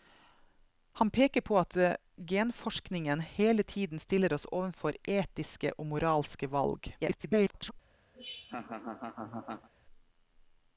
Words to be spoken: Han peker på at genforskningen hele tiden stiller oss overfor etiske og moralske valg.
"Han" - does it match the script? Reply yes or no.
yes